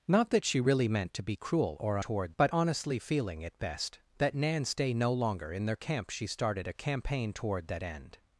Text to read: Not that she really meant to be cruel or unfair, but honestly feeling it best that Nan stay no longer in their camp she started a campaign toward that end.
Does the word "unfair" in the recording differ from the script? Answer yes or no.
yes